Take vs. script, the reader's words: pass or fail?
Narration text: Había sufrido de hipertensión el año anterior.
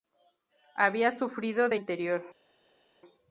fail